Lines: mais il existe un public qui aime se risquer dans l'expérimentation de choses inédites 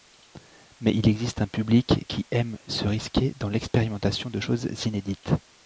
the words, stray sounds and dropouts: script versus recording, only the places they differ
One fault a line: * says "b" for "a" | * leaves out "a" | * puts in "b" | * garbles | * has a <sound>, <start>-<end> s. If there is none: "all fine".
all fine